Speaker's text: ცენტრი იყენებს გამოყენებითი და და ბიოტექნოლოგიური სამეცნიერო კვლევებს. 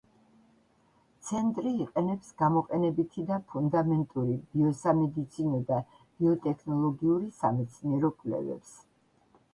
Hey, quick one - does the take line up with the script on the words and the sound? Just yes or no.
no